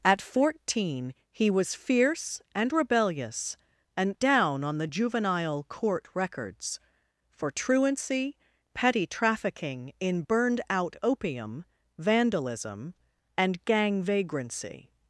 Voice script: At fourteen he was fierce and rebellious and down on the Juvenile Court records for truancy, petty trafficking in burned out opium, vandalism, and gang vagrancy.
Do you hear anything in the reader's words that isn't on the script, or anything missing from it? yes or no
no